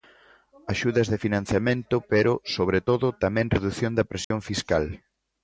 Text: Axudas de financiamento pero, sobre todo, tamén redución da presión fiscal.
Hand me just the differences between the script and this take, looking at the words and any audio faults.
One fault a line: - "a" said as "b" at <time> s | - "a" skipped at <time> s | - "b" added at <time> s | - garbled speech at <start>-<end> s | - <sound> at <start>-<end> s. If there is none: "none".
- dropout at 4.2-4.3 s